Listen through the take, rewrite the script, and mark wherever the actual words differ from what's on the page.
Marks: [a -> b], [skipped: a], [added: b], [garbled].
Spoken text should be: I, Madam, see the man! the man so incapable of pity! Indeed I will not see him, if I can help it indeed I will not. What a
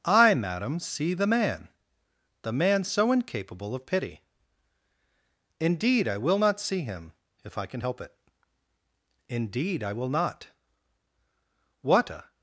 I, Madam, see the man! the man so incapable of pity! Indeed I will not see him, if I can help it indeed I will not. What a